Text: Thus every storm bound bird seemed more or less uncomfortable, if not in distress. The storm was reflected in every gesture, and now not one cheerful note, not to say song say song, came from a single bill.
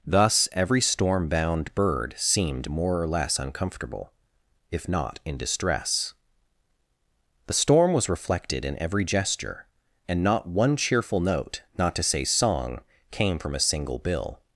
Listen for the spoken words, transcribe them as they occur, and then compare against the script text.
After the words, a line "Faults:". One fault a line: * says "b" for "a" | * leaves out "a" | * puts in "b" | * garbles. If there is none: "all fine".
Thus every storm bound bird seemed more or less uncomfortable, if not in distress. The storm was reflected in every gesture, and not one cheerful note, not to say song, came from a single bill.
Faults:
* leaves out "now"
* leaves out "say song"